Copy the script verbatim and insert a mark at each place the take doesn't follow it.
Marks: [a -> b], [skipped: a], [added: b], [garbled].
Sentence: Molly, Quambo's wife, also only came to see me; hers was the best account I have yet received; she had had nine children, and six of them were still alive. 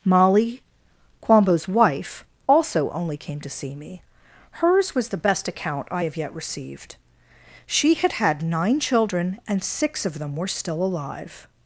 Molly, Quambo's wife, also only came to see me; hers was the best account I have yet received; she had had nine children, and six of them were still alive.